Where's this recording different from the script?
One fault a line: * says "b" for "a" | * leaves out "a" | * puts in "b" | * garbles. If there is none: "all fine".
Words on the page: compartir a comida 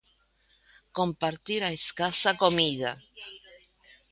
* puts in "escasa"